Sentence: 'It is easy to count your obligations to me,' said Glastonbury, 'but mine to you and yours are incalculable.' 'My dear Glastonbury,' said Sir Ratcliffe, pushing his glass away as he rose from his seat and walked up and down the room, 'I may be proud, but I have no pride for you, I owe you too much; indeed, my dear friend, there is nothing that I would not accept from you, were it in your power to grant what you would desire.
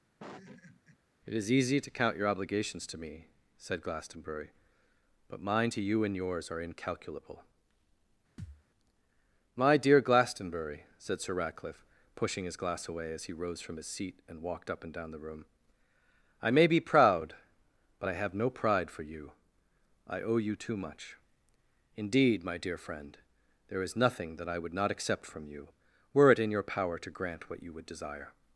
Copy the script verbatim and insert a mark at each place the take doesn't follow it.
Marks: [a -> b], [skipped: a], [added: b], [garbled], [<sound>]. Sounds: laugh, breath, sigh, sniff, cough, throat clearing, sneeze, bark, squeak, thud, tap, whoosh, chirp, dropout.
[laugh] 'It is easy to count your obligations to me,' said Glastonbury, 'but mine to you and yours are incalculable.' [thud] 'My dear Glastonbury,' said Sir Ratcliffe, pushing his glass away as he rose from his seat and walked up and down the room, 'I may be proud, but I have no pride for you, I owe you too much; indeed, my dear friend, there is nothing that I would not accept from you, were it in your power to grant what you would desire.